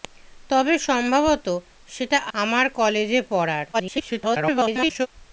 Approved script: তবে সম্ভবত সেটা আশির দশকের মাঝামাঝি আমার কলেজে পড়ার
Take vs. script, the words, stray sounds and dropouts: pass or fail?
fail